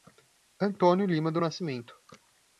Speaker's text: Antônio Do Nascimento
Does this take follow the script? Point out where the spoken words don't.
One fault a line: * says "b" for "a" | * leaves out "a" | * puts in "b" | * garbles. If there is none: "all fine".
* puts in "Lima"